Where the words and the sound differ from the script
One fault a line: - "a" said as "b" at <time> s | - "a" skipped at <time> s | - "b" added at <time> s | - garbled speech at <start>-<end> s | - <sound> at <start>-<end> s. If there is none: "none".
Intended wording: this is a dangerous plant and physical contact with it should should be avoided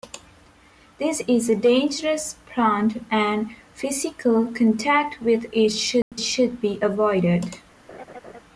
- dropout at 6.0-6.1 s
- laugh at 7.9-8.4 s